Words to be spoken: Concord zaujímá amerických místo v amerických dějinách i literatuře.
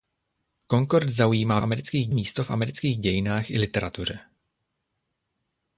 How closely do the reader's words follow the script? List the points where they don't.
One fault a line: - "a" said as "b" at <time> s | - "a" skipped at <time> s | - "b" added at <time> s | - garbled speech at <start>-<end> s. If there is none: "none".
none